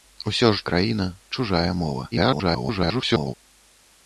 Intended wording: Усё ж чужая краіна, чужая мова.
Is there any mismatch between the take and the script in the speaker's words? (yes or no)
yes